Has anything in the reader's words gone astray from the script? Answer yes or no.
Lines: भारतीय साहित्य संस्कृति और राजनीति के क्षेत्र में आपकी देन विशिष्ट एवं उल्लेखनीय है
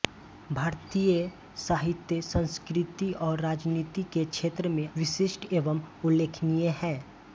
yes